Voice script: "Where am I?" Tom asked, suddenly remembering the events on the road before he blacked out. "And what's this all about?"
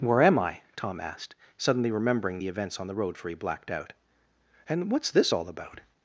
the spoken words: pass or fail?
fail